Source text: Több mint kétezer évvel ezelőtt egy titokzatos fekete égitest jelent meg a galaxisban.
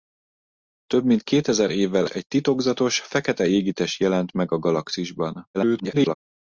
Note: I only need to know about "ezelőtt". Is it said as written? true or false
false